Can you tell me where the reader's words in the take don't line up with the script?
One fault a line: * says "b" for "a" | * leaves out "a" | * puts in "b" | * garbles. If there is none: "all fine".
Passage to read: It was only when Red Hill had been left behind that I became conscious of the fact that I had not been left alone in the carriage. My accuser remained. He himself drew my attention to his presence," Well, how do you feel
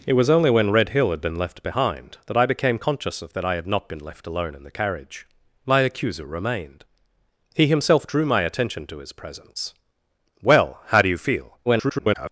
* leaves out "the fact"
* garbles